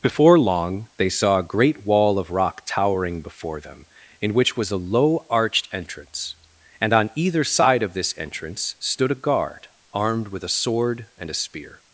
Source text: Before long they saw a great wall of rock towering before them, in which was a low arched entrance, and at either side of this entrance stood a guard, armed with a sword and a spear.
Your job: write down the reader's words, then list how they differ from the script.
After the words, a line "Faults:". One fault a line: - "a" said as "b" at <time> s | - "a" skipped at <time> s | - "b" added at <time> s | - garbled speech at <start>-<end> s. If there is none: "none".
Before long they saw a great wall of rock towering before them, in which was a low arched entrance, and on either side of this entrance stood a guard, armed with a sword and a spear.
Faults:
- "at" said as "on" at 6.9 s